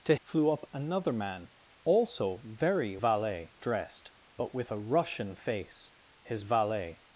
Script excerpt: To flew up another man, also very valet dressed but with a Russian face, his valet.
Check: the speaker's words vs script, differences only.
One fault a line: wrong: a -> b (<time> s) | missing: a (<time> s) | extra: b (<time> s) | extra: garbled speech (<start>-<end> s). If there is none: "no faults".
no faults